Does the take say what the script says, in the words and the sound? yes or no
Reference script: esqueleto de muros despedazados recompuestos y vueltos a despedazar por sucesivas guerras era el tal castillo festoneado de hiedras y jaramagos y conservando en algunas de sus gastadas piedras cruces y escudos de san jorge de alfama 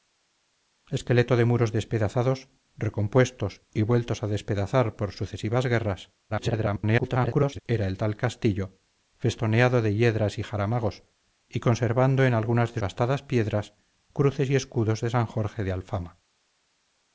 no